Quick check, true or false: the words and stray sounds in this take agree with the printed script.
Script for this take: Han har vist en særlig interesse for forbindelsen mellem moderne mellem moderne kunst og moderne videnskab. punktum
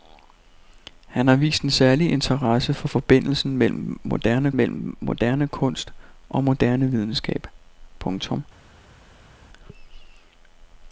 true